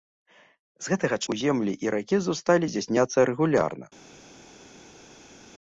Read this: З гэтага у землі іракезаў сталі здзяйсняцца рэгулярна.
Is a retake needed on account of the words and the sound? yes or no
no